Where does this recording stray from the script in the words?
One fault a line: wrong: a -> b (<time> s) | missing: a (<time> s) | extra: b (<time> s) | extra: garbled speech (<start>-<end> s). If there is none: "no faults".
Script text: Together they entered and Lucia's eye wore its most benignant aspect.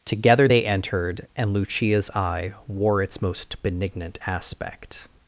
no faults